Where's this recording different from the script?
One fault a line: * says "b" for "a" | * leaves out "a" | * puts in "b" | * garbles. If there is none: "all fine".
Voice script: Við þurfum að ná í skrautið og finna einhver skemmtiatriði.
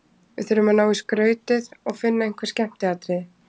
all fine